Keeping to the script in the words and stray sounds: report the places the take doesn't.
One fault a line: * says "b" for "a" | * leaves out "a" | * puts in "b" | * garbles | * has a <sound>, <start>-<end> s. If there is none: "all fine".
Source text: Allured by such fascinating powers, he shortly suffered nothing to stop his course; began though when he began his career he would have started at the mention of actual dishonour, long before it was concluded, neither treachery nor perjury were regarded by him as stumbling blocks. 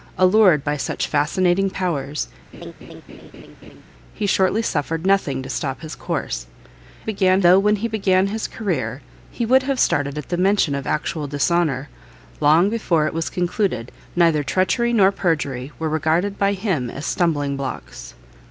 * has a laugh, 2.5-3.8 s